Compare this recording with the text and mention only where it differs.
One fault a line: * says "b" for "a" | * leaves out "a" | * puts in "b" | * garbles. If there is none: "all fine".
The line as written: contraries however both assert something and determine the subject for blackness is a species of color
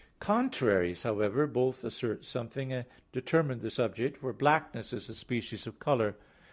all fine